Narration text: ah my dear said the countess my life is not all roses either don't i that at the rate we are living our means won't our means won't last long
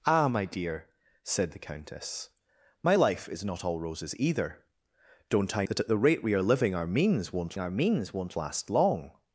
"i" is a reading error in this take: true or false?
false